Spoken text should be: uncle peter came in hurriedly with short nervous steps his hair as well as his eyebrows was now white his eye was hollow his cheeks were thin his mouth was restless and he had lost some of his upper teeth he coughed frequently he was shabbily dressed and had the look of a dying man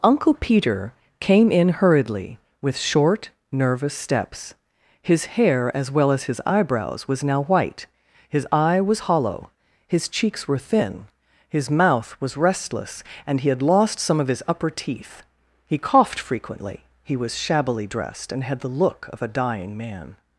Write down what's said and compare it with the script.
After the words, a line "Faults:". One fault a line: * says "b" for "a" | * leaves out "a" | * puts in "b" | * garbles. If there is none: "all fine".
uncle peter came in hurriedly with short nervous steps his hair as well as his eyebrows was now white his eye was hollow his cheeks were thin his mouth was restless and he had lost some of his upper teeth he coughed frequently he was shabbily dressed and had the look of a dying man
Faults:
all fine